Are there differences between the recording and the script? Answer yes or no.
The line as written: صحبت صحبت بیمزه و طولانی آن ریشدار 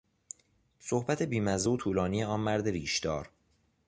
yes